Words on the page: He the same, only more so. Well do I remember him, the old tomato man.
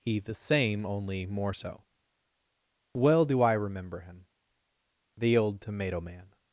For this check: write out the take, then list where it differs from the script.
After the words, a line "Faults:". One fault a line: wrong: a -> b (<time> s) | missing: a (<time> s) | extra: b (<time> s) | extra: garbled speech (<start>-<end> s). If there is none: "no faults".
He the same, only more so. Well do I remember him, the old tomato man.
Faults:
no faults